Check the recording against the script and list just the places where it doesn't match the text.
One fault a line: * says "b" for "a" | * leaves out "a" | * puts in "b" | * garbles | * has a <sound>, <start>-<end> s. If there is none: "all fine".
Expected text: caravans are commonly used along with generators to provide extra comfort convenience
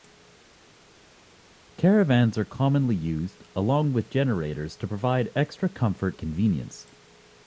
all fine